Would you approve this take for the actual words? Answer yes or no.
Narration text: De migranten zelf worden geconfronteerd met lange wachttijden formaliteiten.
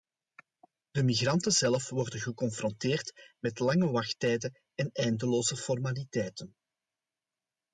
no